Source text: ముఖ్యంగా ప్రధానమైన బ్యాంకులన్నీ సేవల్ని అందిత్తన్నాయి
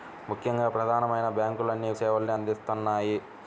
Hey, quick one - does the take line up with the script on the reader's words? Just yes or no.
yes